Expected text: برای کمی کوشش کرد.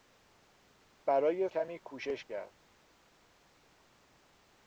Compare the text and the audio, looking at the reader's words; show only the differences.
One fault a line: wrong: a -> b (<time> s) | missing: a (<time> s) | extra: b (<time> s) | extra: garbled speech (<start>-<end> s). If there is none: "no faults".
no faults